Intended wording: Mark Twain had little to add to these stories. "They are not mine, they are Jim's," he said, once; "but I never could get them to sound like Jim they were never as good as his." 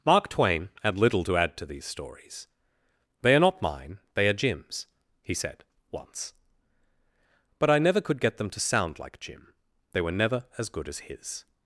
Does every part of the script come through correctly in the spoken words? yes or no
yes